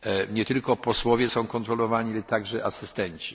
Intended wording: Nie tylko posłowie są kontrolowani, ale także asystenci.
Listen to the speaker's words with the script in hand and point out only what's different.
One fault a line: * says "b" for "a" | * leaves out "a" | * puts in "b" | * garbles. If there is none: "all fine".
all fine